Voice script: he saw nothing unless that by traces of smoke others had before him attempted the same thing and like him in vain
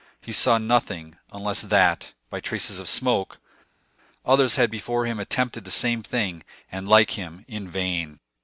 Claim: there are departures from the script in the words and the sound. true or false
false